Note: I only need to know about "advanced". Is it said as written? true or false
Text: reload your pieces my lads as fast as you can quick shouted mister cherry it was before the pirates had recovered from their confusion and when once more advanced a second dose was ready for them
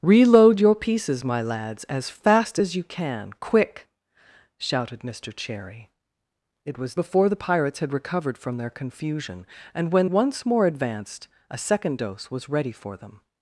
true